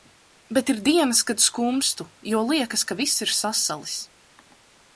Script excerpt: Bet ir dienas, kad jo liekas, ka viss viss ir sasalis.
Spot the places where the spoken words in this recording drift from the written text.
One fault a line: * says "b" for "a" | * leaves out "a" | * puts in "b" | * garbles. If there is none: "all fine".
* puts in "skumstu"
* leaves out "viss"